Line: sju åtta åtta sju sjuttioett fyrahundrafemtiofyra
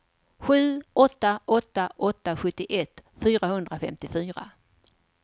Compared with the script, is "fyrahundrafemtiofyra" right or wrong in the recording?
right